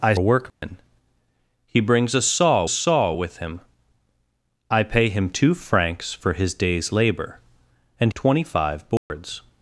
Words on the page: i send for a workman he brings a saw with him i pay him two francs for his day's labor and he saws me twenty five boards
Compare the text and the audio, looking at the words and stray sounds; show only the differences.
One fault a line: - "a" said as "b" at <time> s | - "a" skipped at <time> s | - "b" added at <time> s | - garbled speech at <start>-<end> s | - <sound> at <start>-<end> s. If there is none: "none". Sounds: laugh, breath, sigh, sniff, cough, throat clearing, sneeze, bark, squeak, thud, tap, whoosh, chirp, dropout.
- "send for" skipped at 0.1 s
- dropout at 0.5-0.6 s
- "saw" added at 2.7 s
- "he saws me" skipped at 8.1 s
- dropout at 9.0-9.1 s